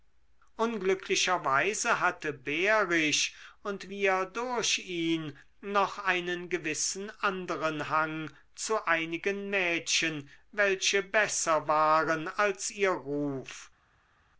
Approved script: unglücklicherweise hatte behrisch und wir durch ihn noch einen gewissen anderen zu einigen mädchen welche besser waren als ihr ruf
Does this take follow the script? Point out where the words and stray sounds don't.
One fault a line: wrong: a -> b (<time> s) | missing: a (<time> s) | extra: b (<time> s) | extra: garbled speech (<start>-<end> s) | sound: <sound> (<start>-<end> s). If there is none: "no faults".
extra: hang (7.9 s)